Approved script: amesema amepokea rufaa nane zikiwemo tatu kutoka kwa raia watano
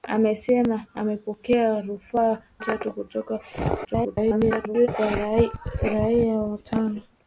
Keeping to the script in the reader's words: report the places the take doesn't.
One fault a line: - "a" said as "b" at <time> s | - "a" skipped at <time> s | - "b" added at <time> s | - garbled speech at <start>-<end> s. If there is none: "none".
- "nane zikiwemo" skipped at 2.4 s
- garbled speech at 3.8-4.9 s